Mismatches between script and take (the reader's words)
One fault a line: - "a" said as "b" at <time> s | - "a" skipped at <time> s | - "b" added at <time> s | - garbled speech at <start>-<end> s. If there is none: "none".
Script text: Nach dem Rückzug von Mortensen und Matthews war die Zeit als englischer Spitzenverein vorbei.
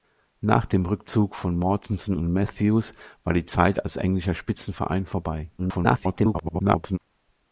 - garbled speech at 5.6-7.0 s